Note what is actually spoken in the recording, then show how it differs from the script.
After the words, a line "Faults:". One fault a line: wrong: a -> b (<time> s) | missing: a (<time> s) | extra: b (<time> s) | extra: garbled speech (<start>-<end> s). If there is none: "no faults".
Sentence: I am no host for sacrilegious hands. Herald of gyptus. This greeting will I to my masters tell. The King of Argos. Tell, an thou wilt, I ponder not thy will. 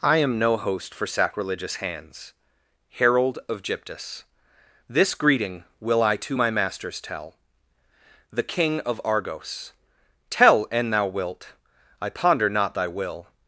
I am no host for sacrilegious hands. Herald of gyptus. This greeting will I to my masters tell. The King of Argos. Tell, an thou wilt, I ponder not thy will.
Faults:
no faults